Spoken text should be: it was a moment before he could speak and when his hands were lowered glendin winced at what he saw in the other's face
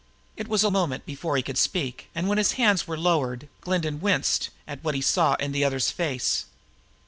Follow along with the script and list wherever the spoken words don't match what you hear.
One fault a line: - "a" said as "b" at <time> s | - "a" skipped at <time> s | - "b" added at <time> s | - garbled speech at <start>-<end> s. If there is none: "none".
none